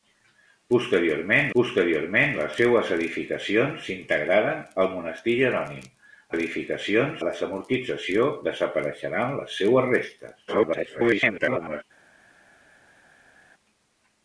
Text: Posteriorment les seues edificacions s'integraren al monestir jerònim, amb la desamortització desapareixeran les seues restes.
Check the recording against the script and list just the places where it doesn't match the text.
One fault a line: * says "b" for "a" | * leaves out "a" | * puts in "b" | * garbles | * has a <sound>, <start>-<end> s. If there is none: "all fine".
* puts in "posteriorment"
* says "edificacions" for "amb"
* garbles